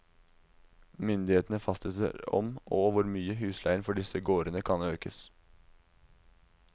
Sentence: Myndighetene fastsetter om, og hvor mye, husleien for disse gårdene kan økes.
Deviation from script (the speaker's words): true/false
false